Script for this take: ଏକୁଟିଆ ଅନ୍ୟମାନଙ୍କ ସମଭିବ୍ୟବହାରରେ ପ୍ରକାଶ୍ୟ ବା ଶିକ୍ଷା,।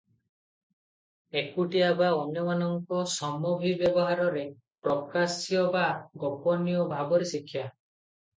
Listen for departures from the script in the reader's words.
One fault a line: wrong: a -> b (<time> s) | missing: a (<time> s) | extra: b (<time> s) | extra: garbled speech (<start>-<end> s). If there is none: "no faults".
extra: ବା (1.9 s)
extra: ଗୋପନୀୟ ଭାବରେ (6.2 s)